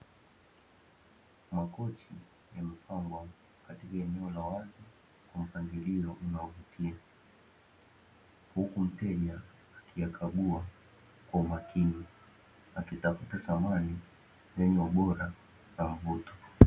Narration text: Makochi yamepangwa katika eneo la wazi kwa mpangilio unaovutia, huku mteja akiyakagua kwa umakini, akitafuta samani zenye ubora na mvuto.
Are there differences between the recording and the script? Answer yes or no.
no